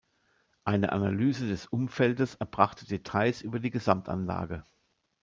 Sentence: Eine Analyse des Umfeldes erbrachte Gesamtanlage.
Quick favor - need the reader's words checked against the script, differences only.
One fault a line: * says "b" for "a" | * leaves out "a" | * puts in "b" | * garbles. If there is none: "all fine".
* puts in "Details über die"